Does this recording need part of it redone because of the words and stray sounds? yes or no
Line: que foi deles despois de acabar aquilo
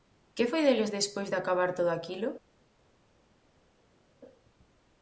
yes